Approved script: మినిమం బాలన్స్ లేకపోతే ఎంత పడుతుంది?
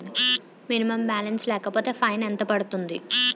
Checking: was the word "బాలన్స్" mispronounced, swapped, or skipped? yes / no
no